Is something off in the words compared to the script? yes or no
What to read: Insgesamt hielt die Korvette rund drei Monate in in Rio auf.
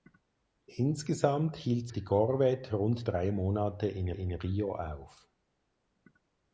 no